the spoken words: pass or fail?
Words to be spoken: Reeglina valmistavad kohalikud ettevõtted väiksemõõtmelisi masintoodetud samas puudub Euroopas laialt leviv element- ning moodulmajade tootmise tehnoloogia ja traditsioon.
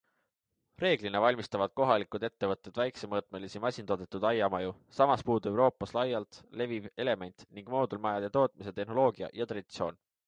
fail